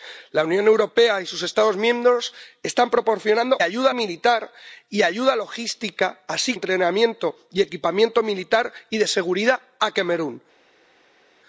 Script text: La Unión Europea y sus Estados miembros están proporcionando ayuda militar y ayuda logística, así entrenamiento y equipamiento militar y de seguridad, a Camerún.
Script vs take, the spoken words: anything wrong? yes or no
no